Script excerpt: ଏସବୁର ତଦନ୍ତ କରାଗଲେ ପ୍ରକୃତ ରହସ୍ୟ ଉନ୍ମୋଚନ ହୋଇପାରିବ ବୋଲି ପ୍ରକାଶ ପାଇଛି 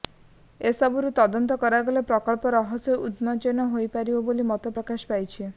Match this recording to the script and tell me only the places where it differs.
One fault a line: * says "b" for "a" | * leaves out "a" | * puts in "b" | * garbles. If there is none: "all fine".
* puts in "ମତ"